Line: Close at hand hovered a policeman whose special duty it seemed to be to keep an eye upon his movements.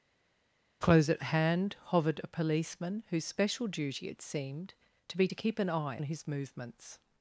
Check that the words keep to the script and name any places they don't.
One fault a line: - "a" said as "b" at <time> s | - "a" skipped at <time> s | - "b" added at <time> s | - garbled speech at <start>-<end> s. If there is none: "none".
- "upon" skipped at 6.0 s